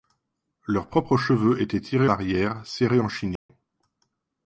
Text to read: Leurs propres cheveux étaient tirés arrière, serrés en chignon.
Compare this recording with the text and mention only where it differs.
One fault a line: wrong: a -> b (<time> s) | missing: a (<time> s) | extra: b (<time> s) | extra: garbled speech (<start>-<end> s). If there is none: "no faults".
no faults